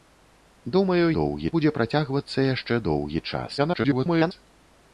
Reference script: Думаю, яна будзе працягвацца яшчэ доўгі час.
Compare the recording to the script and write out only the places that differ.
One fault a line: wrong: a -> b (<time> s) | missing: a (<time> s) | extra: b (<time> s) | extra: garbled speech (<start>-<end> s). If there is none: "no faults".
wrong: яна -> доўгі (1.2 s)
extra: garbled speech (3.6-4.3 s)